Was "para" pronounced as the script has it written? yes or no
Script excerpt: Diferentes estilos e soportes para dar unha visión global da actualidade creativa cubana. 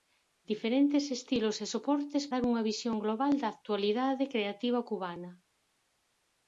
no